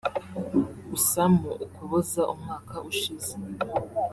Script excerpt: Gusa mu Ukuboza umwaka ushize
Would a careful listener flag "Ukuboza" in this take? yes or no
no